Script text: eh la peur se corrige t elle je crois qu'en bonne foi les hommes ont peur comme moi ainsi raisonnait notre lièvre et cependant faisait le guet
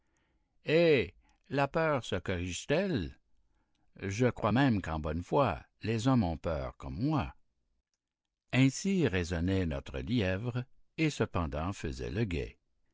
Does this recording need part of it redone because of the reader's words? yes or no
yes